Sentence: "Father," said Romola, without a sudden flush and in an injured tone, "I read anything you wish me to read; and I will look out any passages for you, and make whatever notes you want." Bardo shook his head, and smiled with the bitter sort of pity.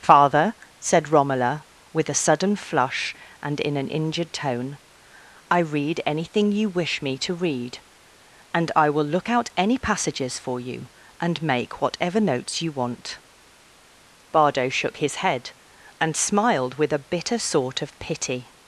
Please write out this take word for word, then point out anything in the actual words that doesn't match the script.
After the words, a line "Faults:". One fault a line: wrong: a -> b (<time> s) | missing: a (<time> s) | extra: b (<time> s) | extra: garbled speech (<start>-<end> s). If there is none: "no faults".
"Father," said Romola, with a sudden flush and in an injured tone, "I read anything you wish me to read; and I will look out any passages for you, and make whatever notes you want." Bardo shook his head, and smiled with a bitter sort of pity.
Faults:
wrong: without -> with (1.9 s)
wrong: the -> a (16.9 s)